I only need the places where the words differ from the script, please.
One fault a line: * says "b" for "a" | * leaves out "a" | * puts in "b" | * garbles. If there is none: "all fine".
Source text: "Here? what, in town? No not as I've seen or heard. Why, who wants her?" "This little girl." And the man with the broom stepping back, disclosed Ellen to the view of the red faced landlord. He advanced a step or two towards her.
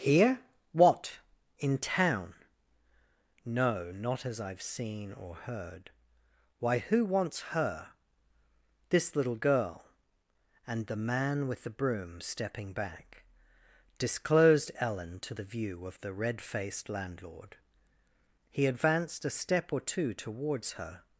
all fine